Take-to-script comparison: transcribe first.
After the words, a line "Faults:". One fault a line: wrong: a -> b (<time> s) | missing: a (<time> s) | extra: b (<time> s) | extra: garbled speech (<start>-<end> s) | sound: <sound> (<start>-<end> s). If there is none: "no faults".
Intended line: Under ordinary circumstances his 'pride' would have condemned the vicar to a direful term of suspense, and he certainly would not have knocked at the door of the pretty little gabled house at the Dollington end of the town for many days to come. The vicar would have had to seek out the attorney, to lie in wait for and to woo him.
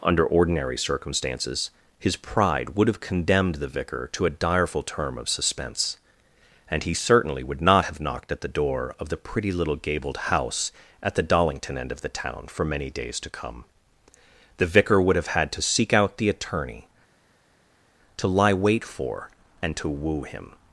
Under ordinary circumstances his 'pride' would have condemned the vicar to a direful term of suspense, and he certainly would not have knocked at the door of the pretty little gabled house at the Dollington end of the town for many days to come. The vicar would have had to seek out the attorney, to lie wait for and to woo him.
Faults:
missing: in (18.5 s)